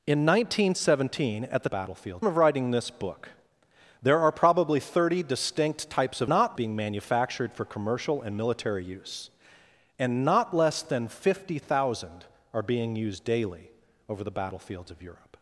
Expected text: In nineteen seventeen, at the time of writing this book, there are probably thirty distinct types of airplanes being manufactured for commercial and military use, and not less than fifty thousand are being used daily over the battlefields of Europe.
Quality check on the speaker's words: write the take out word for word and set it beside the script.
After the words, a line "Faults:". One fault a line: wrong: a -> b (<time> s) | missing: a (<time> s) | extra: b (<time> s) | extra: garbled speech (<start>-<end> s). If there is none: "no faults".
In nineteen seventeen, at the battlefields of writing this book, there are probably thirty distinct types of not being manufactured for commercial and military use, and not less than fifty thousand are being used daily over the battlefields of Europe.
Faults:
wrong: time -> battlefields (1.7 s)
wrong: airplanes -> not (6.3 s)